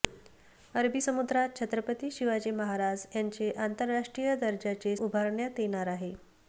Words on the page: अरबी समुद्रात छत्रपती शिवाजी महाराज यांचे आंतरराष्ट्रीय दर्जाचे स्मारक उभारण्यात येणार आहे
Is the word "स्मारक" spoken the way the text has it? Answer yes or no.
no